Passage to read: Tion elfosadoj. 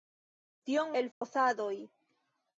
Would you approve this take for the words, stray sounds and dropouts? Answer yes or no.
no